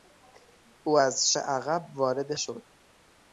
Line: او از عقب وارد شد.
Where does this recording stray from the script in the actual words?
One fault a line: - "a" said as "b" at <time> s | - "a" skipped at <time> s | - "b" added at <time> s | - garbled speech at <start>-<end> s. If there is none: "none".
none